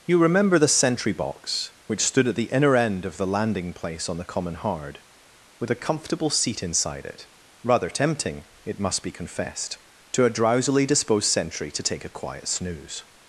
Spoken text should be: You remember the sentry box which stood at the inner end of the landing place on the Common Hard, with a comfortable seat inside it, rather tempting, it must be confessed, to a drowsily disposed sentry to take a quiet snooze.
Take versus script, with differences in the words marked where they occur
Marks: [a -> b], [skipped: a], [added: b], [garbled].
You remember the sentry box which stood at the inner end of the landing place on the Common Hard, with a comfortable seat inside it, rather tempting, it must be confessed, to a drowsily disposed sentry to take a quiet snooze.